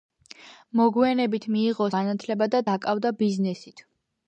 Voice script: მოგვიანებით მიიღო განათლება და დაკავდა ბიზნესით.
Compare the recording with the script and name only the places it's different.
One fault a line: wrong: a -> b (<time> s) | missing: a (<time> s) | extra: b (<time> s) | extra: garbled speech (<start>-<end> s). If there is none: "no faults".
no faults